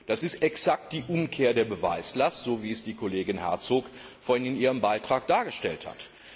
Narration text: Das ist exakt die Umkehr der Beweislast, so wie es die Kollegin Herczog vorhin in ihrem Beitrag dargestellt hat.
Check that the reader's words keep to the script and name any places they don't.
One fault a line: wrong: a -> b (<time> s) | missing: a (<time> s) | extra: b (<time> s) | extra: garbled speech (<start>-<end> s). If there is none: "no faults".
no faults